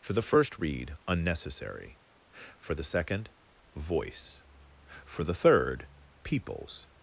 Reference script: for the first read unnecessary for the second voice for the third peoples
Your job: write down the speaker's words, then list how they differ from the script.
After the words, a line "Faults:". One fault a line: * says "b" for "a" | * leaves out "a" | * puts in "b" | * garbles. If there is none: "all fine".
for the first read unnecessary for the second voice for the third peoples
Faults:
all fine